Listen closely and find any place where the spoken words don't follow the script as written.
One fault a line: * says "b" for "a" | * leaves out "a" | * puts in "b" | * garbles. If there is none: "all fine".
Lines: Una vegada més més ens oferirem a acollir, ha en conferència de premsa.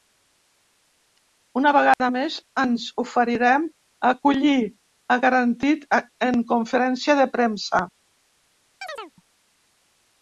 * leaves out "més"
* puts in "garantit"